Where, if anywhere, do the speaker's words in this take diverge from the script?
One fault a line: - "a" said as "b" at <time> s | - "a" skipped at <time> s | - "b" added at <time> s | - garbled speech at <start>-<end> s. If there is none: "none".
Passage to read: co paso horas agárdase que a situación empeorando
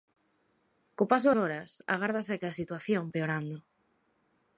none